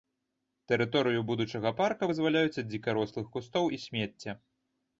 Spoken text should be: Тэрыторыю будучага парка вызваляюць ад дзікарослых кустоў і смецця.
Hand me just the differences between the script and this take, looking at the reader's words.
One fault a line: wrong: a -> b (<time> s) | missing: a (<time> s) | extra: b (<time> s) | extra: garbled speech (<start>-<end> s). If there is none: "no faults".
no faults